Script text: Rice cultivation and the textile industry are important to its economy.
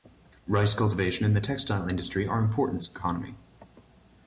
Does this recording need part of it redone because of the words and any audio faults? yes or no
yes